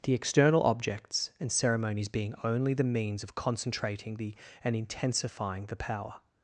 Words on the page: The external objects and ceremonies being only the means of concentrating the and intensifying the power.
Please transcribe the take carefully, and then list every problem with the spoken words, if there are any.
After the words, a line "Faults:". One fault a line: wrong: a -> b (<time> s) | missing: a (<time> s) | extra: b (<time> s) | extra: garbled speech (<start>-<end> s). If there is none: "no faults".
The external objects and ceremonies being only the means of concentrating the and intensifying the power.
Faults:
no faults